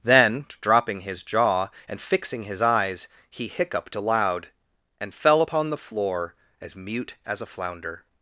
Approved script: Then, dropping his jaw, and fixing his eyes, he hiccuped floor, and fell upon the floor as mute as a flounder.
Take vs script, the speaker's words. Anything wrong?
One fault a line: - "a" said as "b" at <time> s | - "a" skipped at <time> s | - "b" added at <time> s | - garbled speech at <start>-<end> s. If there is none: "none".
- "floor" said as "aloud" at 4.0 s